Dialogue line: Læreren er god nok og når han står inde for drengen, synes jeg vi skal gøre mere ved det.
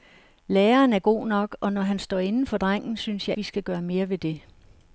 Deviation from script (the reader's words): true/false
false